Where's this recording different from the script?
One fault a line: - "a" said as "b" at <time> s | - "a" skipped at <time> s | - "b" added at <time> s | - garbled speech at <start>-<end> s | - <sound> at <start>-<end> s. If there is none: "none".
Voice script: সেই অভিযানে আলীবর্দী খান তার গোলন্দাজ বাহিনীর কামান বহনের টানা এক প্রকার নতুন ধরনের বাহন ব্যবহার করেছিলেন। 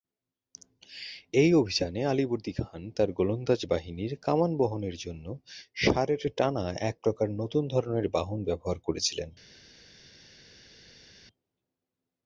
- "সেই" said as "এই" at 1.3 s
- "জন্য ষাঁড়ের" added at 5.0 s